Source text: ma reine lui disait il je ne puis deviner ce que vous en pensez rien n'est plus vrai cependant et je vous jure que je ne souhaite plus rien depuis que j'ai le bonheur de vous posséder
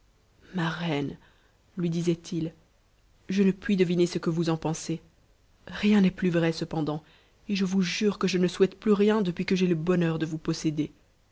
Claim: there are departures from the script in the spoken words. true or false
false